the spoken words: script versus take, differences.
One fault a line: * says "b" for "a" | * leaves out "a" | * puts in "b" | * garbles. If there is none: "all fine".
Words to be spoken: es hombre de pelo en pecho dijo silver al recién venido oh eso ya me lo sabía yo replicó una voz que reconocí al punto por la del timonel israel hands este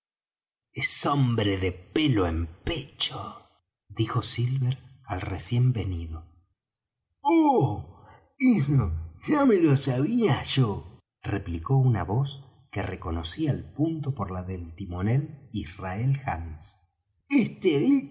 all fine